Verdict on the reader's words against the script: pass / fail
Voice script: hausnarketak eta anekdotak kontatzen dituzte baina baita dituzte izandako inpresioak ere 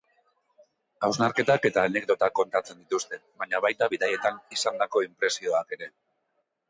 fail